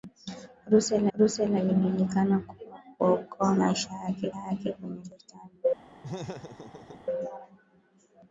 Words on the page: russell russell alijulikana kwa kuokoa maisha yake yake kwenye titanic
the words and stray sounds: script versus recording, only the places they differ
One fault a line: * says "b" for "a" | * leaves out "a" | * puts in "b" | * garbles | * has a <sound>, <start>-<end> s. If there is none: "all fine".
* has a laugh, 6.0-7.1 s